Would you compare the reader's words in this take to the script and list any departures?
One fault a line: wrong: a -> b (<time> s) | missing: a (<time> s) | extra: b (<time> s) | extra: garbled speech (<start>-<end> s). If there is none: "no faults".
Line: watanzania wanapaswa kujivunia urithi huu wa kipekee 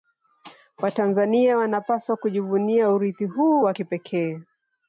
no faults